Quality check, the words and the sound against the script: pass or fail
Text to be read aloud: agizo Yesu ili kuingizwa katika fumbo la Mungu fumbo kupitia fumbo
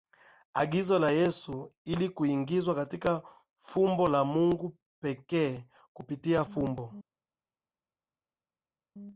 fail